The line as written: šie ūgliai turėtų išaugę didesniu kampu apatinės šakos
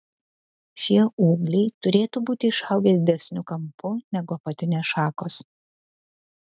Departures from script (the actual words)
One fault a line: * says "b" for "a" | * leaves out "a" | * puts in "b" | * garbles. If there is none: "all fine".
* puts in "būti"
* puts in "negu"